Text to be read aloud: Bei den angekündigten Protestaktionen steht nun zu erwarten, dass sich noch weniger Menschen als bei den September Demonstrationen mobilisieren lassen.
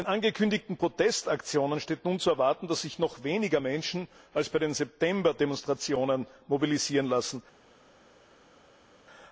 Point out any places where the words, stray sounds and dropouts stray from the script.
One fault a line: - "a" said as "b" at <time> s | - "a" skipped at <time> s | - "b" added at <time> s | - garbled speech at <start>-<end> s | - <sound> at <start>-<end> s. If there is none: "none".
none